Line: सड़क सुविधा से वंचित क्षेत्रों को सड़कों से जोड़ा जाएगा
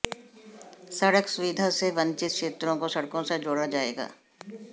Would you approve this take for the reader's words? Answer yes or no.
yes